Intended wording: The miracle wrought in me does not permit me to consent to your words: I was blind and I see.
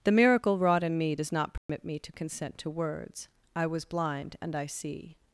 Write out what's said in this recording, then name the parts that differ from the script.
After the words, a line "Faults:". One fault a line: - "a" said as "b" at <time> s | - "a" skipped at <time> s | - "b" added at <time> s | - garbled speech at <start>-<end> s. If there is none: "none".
The miracle wrought in me does not permit me to consent to words: I was blind and I see.
Faults:
- "your" skipped at 2.7 s